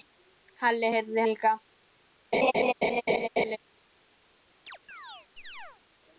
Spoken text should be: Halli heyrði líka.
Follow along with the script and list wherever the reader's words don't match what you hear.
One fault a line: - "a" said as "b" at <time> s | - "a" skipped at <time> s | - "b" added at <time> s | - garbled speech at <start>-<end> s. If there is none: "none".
none